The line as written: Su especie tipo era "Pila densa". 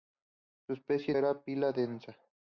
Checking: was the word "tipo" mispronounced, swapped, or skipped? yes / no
yes